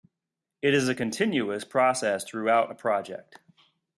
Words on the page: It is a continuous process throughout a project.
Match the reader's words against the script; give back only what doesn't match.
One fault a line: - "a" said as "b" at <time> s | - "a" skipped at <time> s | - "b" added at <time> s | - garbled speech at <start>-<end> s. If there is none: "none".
none